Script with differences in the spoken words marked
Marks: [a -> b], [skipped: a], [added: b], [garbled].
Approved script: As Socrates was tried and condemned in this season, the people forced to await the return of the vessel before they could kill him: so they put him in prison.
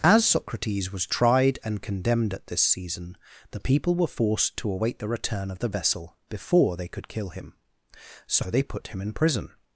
As Socrates was tried and condemned [in -> at] this season, the people [added: were] forced to await the return of the vessel before they could kill him: so they put him in prison.